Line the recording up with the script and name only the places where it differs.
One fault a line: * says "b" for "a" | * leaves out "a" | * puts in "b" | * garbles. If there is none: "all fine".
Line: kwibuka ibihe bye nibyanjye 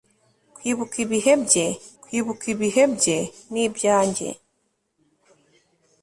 * puts in "kwibuka ibihe bye"